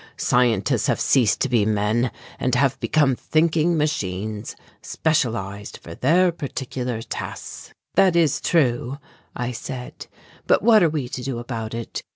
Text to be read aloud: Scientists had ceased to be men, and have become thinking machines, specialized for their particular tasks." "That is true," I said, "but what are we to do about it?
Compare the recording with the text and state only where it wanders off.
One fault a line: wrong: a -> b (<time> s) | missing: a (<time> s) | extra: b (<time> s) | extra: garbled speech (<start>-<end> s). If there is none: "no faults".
wrong: had -> have (0.9 s)